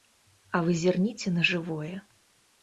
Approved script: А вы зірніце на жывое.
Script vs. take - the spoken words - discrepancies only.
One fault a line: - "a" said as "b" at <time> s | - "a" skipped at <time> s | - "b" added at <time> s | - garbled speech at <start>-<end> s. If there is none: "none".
none